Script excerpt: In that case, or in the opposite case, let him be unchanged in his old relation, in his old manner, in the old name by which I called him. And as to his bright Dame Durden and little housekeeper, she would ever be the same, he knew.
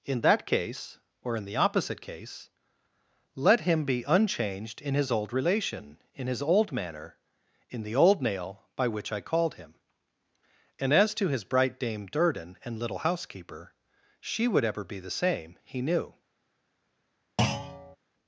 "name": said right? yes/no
no